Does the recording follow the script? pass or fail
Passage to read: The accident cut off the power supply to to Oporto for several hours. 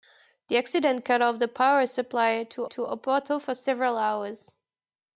pass